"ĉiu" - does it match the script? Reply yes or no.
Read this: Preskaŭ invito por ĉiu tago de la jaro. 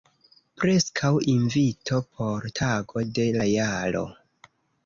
no